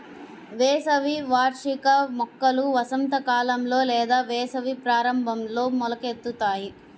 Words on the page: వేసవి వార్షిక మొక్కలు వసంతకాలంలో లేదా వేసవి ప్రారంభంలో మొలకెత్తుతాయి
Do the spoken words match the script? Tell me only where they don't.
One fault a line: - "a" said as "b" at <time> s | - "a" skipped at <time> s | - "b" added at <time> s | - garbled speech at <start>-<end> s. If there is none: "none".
none